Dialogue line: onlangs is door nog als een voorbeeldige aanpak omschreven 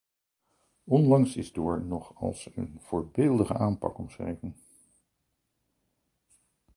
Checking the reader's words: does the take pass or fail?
pass